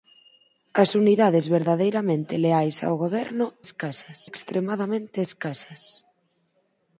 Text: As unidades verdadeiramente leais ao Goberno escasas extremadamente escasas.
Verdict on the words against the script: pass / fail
pass